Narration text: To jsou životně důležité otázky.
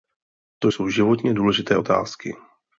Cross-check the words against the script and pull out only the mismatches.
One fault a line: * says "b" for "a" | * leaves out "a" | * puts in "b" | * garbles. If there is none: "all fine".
all fine